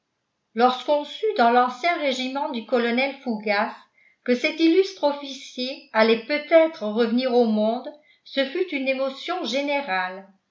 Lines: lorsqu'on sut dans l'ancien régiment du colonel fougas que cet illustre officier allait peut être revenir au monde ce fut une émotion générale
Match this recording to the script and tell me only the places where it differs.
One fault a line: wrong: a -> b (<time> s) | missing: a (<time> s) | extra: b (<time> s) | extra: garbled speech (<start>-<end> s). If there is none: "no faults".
no faults